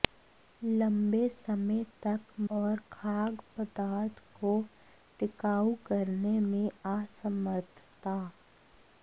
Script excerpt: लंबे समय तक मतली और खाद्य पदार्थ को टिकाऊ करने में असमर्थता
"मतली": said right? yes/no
no